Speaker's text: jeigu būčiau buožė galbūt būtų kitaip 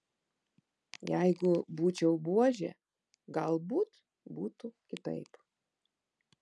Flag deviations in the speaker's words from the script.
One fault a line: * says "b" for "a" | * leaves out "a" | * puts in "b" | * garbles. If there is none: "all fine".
all fine